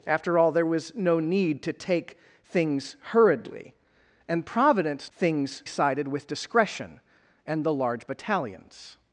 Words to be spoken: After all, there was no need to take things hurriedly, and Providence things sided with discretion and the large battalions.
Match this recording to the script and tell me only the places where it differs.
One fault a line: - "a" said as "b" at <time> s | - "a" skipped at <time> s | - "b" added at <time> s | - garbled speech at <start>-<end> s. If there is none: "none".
none